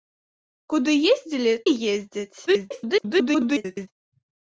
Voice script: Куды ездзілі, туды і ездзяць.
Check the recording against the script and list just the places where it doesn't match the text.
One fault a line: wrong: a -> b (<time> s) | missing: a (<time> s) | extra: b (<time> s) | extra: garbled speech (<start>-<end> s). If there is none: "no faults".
missing: туды (1.5 s)
extra: garbled speech (2.5-3.9 s)